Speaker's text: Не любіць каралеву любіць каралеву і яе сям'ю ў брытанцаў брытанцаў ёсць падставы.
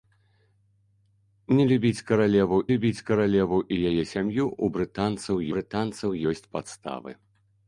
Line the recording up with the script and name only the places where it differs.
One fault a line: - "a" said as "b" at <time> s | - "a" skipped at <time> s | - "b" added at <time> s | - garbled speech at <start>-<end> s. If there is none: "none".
none